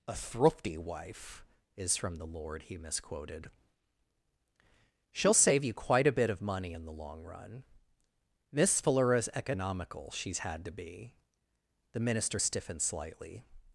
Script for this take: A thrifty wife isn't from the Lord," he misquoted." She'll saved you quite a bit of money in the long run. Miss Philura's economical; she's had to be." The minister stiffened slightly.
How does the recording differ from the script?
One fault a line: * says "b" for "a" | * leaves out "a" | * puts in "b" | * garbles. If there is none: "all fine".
* says "is" for "isn't"
* says "save" for "saved"